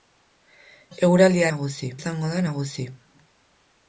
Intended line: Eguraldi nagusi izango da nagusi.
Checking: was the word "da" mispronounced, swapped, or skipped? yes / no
no